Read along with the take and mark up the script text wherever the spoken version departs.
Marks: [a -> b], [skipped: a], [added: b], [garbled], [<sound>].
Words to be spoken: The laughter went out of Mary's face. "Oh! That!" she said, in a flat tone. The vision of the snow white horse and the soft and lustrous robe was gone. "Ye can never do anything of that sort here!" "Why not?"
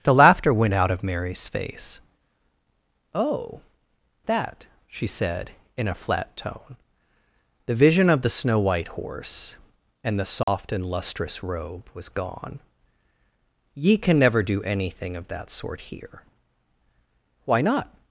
The laughter went out of Mary's face. "Oh! That!" she said, in a flat tone. The vision of the snow white horse and the soft [dropout] and lustrous robe was gone. "Ye can never do anything of that sort here!" "Why not?"